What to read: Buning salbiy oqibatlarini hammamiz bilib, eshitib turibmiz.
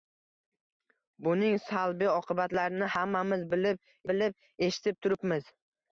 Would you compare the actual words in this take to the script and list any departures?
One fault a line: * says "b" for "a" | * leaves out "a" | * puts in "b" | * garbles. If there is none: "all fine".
* puts in "bilib"